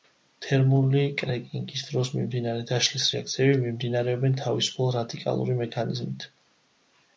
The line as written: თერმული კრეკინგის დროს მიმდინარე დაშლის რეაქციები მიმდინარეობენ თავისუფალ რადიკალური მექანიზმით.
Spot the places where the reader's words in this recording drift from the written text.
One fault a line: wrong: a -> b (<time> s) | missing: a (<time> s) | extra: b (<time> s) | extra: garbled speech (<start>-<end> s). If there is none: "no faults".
no faults